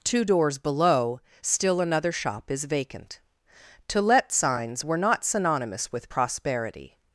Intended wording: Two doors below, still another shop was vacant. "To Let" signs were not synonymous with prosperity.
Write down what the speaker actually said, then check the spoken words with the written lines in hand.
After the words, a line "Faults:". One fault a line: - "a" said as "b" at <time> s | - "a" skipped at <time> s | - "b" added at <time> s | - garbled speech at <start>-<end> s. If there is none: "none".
Two doors below, still another shop is vacant. "To Let" signs were not synonymous with prosperity.
Faults:
- "was" said as "is" at 2.5 s